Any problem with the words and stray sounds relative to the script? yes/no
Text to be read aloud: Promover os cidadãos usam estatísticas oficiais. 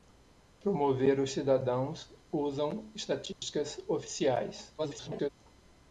yes